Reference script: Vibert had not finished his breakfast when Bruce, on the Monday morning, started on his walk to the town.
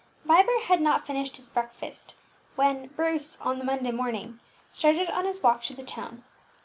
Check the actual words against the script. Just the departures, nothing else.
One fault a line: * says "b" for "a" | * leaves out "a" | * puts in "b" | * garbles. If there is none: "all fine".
all fine